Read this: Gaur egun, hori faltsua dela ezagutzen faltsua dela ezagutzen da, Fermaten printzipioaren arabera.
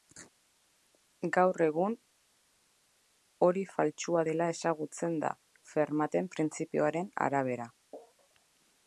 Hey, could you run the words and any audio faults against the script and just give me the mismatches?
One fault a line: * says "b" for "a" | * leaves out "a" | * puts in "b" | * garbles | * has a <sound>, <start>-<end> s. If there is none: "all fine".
* leaves out "faltsua dela ezagutzen"